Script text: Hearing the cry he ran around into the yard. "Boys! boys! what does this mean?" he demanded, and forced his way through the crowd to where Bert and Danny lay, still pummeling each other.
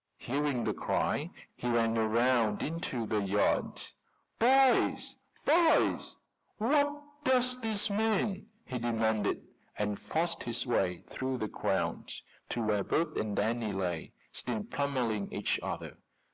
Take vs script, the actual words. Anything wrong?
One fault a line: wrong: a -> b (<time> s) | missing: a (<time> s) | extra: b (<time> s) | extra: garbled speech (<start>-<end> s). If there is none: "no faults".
no faults